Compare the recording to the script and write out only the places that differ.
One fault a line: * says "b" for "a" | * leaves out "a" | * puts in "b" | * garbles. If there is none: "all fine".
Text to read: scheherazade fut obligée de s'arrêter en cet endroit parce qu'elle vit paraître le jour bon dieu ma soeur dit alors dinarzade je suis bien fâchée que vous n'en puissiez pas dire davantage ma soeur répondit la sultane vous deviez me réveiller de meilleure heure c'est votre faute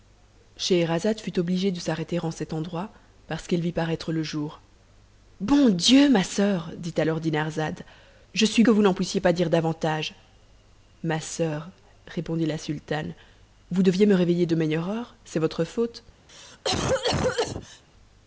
* leaves out "bien fâchée"